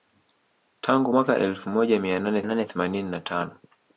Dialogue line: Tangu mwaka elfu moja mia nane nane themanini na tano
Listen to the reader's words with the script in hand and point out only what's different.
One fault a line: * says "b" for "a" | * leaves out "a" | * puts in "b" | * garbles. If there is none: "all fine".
all fine